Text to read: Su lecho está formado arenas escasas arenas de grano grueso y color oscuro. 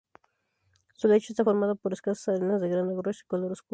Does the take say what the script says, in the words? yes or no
no